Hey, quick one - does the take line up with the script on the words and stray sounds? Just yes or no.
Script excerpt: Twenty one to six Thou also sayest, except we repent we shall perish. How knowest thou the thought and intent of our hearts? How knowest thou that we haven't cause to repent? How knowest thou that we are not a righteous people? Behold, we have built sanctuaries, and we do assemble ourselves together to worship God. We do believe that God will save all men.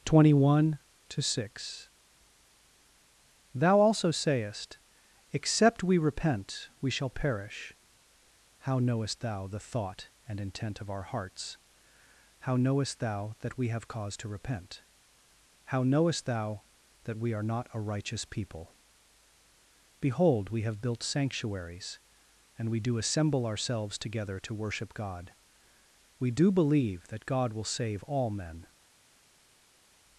no